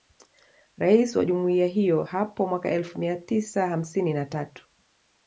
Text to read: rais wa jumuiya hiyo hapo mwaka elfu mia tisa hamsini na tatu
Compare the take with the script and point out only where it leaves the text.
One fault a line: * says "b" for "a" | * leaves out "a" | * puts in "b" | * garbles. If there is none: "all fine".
all fine